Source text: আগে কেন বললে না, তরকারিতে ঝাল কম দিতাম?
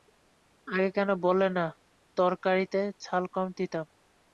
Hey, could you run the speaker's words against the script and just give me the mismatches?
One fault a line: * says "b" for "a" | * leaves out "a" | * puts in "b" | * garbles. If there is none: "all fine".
all fine